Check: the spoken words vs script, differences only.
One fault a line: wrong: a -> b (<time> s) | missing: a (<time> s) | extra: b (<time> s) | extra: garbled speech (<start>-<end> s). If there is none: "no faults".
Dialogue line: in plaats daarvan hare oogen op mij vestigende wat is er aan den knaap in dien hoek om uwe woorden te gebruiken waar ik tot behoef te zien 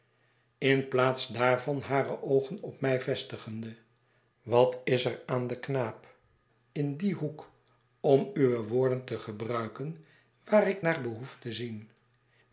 wrong: tot -> naar (10.8 s)